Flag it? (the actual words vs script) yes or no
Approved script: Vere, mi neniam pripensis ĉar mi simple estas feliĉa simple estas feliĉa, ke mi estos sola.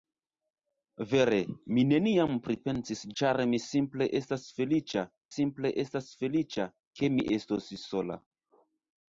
no